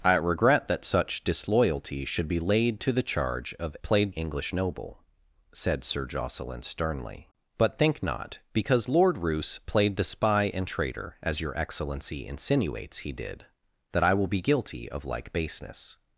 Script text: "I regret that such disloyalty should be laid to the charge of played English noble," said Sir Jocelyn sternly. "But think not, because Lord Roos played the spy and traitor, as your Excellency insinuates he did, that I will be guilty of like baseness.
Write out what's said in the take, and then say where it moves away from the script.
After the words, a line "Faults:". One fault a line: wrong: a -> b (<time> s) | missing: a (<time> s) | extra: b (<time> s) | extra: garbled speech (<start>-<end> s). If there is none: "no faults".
"I regret that such disloyalty should be laid to the charge of played English noble," said Sir Jocelyn sternly. "But think not, because Lord Roos played the spy and traitor, as your Excellency insinuates he did, that I will be guilty of like baseness.
Faults:
no faults